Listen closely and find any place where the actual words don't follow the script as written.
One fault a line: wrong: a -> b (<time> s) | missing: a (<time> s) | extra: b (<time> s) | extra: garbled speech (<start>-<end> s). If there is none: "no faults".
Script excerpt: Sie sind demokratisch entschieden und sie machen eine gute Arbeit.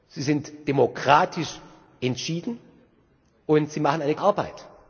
missing: gute (4.2 s)